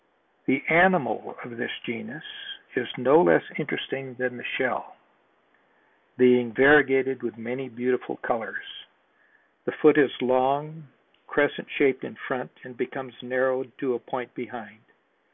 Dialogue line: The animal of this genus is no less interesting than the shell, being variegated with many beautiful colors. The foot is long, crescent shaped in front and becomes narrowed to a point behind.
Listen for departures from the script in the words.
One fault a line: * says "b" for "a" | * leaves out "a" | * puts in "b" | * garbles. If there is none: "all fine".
all fine